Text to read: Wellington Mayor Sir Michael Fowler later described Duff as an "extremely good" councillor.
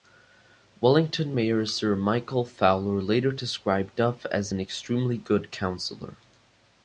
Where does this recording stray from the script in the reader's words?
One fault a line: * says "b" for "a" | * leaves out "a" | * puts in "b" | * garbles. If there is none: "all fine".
all fine